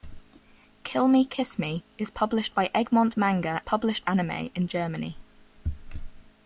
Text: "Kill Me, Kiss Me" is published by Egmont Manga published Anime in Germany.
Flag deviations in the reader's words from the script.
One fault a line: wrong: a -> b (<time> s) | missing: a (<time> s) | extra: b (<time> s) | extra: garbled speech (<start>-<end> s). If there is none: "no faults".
no faults